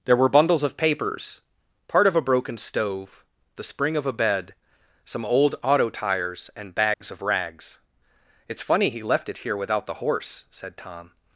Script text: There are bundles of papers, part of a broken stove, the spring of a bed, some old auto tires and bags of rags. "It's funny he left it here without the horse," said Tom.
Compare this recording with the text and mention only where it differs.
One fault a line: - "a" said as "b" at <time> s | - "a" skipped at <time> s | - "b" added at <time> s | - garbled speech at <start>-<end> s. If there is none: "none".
- "are" said as "were" at 0.1 s